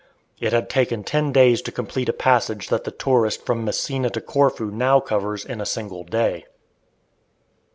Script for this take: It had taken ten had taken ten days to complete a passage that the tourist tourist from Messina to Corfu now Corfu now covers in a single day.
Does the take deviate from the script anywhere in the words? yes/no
yes